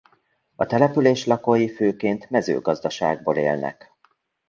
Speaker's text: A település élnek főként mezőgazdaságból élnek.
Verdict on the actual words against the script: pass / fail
fail